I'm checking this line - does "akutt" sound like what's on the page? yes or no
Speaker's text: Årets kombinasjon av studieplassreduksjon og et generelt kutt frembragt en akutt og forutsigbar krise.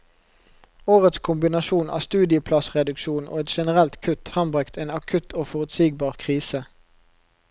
yes